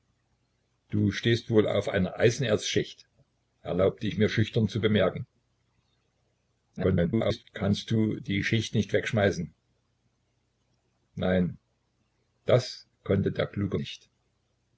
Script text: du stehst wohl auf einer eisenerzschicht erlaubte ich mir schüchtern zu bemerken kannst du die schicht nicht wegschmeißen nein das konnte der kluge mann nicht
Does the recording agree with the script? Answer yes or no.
no